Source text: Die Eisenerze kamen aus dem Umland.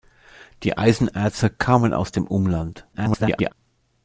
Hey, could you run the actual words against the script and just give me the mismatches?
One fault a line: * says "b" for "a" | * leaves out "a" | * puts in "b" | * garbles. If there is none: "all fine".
* garbles